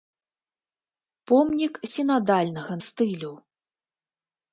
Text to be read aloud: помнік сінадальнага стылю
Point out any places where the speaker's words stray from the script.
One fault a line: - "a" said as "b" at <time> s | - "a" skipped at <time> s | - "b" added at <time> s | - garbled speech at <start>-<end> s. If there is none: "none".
none